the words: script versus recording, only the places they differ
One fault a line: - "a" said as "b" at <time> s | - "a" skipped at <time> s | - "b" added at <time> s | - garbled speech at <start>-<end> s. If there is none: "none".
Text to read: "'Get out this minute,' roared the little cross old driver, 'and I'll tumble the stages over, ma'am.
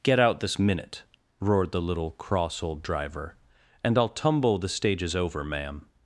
none